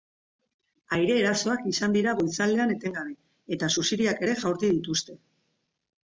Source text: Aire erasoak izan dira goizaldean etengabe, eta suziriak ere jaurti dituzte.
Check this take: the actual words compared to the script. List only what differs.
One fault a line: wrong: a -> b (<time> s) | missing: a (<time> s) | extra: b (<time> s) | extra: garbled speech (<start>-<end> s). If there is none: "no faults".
no faults